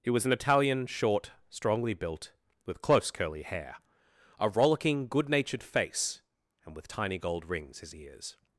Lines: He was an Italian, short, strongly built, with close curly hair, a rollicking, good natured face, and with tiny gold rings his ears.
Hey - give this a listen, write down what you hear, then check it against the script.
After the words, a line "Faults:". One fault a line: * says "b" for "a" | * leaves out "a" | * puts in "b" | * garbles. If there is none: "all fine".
He was an Italian, short, strongly built, with close curly hair, a rollicking, good natured face, and with tiny gold rings his ears.
Faults:
all fine